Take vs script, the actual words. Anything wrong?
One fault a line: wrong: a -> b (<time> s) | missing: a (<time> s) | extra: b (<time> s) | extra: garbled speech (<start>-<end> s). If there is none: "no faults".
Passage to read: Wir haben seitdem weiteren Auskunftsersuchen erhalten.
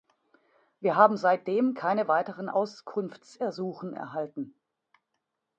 extra: keine (1.8 s)